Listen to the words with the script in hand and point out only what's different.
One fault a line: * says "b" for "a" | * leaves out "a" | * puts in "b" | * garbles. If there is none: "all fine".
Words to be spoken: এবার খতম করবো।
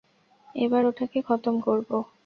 * puts in "ওটাকে"